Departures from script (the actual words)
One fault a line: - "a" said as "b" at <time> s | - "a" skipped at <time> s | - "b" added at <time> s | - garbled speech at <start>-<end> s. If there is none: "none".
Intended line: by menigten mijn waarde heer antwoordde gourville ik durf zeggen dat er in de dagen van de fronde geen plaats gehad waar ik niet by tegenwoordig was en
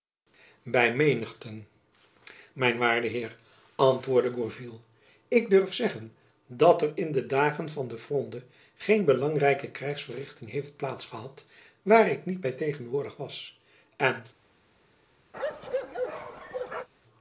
- "belangrijke krijgsverrichting heeft" added at 9.0 s